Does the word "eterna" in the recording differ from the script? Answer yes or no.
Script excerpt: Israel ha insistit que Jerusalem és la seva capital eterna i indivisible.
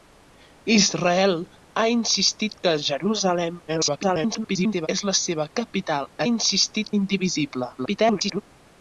yes